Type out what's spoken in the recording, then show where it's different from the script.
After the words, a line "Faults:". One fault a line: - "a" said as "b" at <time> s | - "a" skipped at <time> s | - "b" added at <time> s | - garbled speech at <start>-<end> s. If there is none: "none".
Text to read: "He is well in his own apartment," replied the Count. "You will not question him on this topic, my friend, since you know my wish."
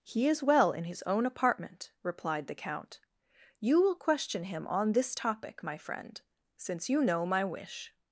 "He is well in his own apartment," replied the Count. "You will question him on this topic, my friend, since you know my wish."
Faults:
- "not" skipped at 4.0 s